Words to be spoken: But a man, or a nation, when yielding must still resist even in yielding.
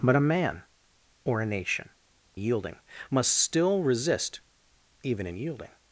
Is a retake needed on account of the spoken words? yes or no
yes